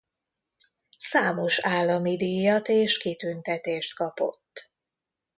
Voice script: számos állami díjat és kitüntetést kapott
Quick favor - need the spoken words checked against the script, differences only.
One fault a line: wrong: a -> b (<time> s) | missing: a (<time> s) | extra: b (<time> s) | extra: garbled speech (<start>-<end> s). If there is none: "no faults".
no faults